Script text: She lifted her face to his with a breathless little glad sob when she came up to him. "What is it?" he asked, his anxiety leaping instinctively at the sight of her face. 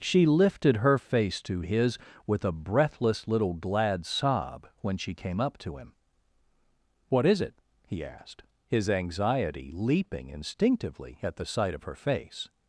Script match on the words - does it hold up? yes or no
yes